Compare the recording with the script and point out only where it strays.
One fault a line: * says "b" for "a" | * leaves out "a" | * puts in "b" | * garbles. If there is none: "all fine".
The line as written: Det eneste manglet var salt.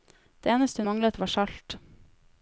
all fine